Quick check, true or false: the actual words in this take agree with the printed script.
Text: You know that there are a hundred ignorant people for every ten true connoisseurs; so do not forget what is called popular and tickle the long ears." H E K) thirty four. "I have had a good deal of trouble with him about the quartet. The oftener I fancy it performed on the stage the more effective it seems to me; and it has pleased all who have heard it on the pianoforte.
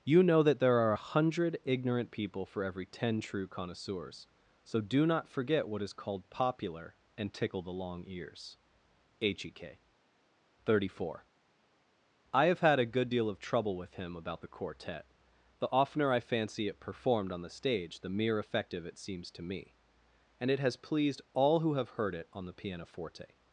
false